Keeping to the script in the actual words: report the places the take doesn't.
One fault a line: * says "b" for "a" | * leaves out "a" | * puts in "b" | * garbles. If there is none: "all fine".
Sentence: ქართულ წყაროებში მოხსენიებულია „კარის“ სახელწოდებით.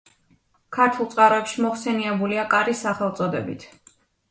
all fine